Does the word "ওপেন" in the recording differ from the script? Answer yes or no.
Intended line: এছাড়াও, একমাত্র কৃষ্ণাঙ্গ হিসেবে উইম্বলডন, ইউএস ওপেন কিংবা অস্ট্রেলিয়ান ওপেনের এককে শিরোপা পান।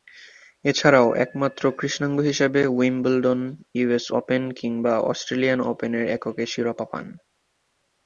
no